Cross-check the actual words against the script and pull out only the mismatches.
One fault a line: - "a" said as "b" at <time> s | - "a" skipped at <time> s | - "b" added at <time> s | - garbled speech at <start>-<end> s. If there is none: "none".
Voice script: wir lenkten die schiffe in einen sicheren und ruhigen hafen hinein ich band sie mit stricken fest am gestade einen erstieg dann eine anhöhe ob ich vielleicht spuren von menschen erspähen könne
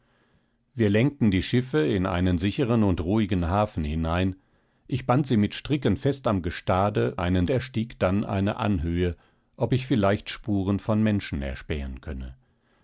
none